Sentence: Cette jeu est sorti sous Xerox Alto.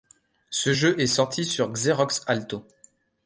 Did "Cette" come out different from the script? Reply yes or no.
yes